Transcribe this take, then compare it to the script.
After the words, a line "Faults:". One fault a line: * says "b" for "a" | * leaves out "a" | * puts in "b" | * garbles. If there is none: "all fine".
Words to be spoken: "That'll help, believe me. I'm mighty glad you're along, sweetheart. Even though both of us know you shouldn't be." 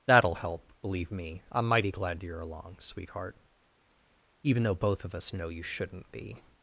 "That'll help, believe me. I'm mighty glad you're along, sweetheart. Even though both of us know you shouldn't be."
Faults:
all fine